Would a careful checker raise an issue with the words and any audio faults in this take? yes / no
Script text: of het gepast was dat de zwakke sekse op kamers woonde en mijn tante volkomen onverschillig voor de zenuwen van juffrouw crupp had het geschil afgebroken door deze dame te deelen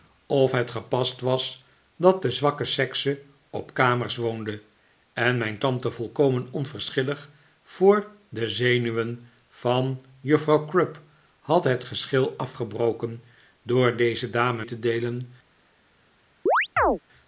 yes